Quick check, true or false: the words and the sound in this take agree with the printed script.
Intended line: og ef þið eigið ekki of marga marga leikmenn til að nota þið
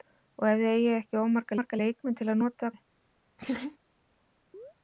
false